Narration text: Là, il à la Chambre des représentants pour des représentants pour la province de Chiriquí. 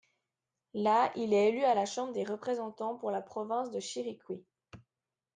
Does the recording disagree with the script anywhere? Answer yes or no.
yes